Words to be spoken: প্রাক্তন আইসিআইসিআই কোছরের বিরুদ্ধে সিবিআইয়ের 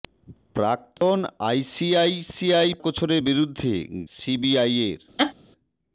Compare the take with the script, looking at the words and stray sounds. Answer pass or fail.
fail